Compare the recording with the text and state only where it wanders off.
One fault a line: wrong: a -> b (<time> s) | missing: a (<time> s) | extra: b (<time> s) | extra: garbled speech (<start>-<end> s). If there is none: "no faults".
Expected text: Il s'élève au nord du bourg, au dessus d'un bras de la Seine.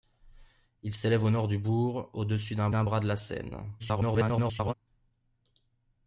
extra: d'un (2.7 s)
extra: garbled speech (3.8-4.7 s)